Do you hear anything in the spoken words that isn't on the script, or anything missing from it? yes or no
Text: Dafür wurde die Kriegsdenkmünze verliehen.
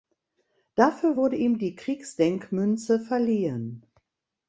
yes